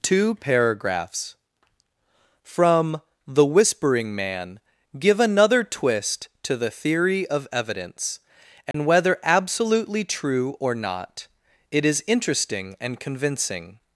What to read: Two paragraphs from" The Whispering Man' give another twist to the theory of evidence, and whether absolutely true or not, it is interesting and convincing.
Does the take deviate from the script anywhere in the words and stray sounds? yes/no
yes